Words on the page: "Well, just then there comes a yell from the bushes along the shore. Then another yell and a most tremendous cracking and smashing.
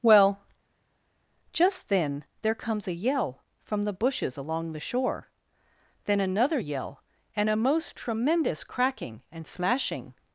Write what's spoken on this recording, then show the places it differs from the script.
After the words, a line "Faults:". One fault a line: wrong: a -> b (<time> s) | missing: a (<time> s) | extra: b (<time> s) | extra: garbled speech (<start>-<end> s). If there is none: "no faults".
"Well, just then there comes a yell from the bushes along the shore. Then another yell and a most tremendous cracking and smashing.
Faults:
no faults